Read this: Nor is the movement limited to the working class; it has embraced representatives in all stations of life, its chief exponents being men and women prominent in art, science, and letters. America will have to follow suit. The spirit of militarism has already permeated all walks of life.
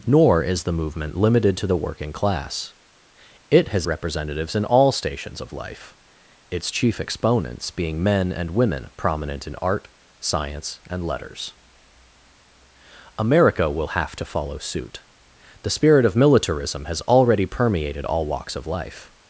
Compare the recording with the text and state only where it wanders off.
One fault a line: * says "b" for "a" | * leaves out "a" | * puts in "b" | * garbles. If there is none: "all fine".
* leaves out "embraced"